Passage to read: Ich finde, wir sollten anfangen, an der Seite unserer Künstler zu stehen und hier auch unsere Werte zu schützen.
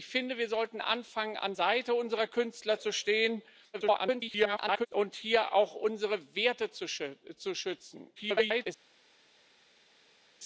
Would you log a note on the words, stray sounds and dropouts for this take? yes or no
yes